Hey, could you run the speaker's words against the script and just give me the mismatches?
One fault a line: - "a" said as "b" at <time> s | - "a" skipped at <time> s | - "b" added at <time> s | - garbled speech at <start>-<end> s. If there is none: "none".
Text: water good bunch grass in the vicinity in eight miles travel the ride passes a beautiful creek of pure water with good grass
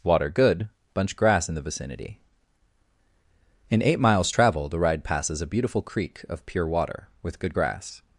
none